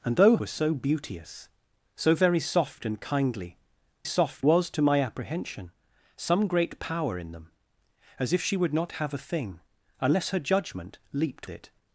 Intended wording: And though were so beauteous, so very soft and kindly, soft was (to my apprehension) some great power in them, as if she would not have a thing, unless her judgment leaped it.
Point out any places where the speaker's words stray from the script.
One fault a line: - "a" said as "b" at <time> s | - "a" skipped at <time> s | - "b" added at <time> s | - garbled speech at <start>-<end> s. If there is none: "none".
none